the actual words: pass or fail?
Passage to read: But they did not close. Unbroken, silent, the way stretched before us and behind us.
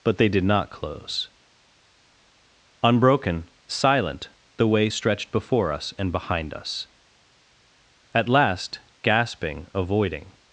fail